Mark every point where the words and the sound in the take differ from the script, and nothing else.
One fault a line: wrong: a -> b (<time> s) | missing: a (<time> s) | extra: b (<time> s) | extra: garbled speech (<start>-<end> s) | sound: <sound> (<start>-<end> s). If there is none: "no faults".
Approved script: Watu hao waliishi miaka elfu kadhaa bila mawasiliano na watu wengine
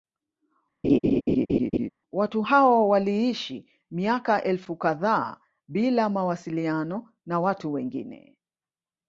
sound: laugh (0.8-1.9 s)